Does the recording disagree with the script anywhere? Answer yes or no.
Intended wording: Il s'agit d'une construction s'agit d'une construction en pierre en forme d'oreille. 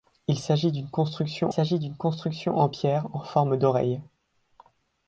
no